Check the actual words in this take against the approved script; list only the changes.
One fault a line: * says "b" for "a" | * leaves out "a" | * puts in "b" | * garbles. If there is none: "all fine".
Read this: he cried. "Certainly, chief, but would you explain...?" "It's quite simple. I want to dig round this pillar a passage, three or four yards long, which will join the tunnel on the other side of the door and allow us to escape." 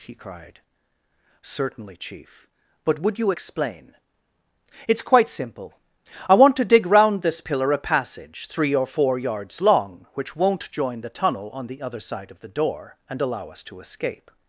* says "won't" for "will"